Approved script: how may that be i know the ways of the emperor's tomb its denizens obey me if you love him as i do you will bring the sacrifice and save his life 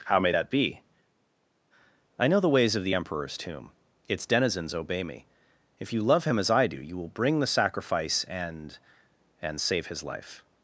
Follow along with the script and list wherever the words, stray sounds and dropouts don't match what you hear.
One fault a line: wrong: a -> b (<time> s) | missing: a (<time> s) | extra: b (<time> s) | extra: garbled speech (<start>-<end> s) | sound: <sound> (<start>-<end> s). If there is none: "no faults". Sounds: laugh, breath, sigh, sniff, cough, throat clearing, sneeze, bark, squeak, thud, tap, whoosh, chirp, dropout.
extra: and (9.4 s)